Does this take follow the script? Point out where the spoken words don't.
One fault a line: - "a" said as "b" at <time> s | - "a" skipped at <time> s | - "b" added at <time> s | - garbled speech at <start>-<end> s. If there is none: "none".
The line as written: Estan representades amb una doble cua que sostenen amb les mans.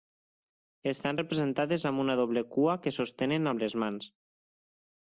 none